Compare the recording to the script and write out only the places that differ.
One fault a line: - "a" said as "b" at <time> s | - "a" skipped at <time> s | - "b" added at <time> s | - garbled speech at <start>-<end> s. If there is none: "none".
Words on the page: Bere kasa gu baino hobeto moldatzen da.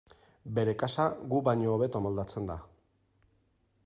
none